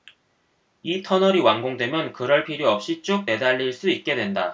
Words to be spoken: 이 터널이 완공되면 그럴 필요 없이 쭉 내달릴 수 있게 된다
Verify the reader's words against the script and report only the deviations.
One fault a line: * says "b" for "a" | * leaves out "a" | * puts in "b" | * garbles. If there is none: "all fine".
all fine